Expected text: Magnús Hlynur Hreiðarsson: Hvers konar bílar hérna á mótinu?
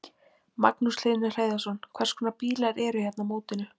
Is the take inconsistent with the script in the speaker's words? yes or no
yes